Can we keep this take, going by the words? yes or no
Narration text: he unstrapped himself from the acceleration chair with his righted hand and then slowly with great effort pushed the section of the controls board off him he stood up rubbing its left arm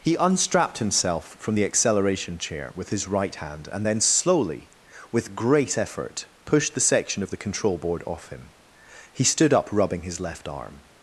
no